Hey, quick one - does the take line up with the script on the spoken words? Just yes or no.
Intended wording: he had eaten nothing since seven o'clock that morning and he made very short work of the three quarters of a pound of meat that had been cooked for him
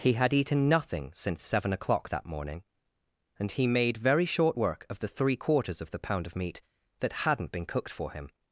no